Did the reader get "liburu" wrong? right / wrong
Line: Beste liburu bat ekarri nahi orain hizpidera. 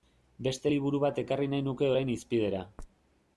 right